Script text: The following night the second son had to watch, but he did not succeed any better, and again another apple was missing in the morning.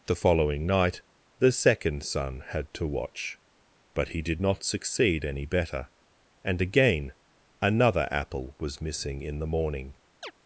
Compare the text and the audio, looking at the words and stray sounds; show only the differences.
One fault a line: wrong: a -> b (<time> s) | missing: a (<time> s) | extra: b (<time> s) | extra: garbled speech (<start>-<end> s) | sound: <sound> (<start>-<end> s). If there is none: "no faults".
sound: chirp (10.2-10.3 s)